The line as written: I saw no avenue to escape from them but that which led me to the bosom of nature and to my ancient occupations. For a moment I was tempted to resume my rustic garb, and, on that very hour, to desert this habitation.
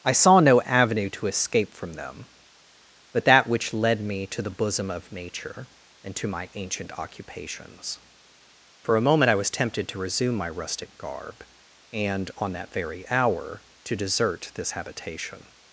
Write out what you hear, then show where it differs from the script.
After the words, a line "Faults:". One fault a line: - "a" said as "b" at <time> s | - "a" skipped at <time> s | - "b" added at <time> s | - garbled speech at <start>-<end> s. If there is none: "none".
I saw no avenue to escape from them but that which led me to the bosom of nature and to my ancient occupations. For a moment I was tempted to resume my rustic garb, and, on that very hour, to desert this habitation.
Faults:
none